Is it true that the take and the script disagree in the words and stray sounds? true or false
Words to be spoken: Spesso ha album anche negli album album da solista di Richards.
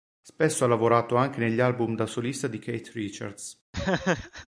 true